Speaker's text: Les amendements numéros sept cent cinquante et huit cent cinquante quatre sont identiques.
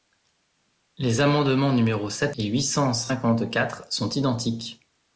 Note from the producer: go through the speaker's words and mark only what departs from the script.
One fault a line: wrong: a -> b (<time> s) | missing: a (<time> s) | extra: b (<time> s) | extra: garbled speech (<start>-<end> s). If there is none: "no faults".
missing: cent cinquante (2.3 s)